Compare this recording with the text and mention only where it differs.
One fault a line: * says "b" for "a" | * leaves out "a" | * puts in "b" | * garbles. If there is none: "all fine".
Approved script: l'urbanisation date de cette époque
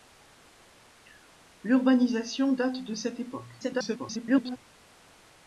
* garbles